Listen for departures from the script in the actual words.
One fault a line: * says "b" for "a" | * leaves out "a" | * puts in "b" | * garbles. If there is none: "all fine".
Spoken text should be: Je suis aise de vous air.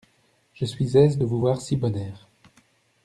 * puts in "voir si bon"